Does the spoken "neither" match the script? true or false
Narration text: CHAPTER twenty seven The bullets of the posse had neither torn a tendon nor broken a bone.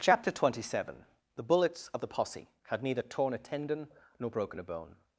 true